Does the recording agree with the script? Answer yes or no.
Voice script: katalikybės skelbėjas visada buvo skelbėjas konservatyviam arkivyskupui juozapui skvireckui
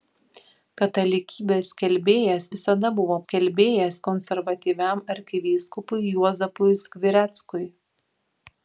yes